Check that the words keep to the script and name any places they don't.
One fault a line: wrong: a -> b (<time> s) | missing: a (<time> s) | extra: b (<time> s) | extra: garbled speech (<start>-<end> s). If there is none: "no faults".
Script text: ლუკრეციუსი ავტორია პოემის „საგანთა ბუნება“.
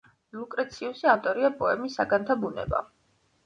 no faults